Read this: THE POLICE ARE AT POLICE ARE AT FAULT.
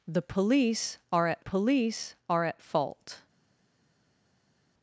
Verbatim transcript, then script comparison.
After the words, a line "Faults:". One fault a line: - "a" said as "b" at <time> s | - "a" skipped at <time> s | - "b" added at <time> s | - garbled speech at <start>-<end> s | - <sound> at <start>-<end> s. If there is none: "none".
THE POLICE ARE AT POLICE ARE AT FAULT.
Faults:
none